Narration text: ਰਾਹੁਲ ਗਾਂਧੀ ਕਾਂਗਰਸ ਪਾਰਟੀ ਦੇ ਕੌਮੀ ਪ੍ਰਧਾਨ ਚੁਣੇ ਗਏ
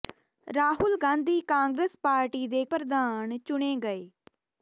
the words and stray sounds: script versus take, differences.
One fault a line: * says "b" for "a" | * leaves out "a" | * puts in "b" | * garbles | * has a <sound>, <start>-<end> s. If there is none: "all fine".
* leaves out "ਕੌਮੀ"